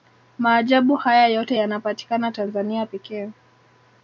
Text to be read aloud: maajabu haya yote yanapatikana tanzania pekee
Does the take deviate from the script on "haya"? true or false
false